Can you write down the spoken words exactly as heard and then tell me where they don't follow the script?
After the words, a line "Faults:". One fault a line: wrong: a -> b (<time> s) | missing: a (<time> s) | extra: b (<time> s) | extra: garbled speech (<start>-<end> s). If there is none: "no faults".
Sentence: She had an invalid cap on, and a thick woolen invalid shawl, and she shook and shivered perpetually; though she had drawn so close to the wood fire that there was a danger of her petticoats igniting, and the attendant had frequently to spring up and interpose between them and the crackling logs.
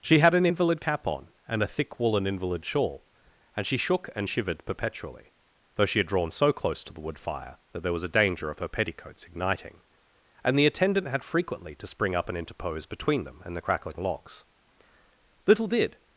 She had an invalid cap on, and a thick woolen invalid shawl, and she shook and shivered perpetually; though she had drawn so close to the wood fire that there was a danger of her petticoats igniting, and the attendant had frequently to spring up and interpose between them and the crackling logs. Little did
Faults:
extra: Little did (15.5 s)